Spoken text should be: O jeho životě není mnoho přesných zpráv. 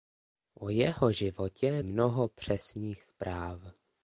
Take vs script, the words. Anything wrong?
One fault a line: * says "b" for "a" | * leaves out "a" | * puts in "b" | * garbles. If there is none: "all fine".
* leaves out "není"